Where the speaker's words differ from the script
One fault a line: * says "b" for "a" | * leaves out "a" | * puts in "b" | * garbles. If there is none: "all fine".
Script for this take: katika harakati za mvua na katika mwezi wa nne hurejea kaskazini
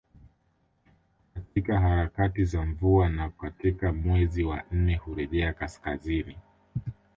all fine